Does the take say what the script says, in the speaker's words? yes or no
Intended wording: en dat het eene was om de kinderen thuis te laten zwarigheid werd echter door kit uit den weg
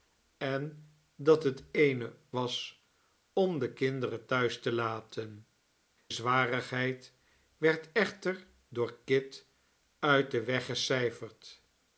yes